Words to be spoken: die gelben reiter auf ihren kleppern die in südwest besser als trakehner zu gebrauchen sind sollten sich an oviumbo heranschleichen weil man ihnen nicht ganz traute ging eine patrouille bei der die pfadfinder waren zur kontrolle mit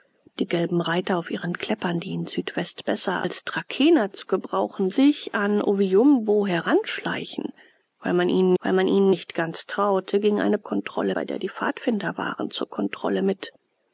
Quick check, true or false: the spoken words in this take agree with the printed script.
false